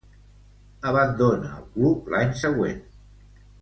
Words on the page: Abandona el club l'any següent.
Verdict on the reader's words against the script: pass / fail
pass